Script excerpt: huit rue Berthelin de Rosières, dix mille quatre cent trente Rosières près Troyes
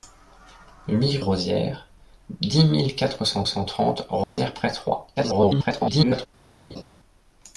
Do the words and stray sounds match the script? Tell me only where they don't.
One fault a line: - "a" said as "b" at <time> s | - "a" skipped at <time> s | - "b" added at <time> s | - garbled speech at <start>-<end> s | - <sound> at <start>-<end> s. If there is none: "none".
- "rue Berthelin de" skipped at 1.2 s
- "cent" added at 3.4 s
- dropout at 4.2-4.4 s
- garbled speech at 5.2-6.3 s
- laugh at 6.7-6.8 s